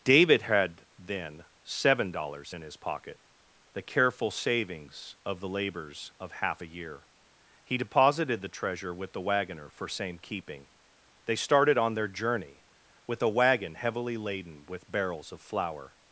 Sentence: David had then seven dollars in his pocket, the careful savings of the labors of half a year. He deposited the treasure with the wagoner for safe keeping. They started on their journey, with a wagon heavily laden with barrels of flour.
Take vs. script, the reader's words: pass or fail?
fail